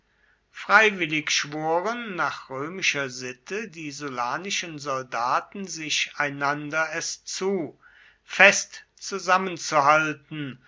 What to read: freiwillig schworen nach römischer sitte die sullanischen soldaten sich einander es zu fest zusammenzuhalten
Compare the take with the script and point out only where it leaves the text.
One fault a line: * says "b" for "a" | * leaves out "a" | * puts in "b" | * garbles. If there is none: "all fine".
all fine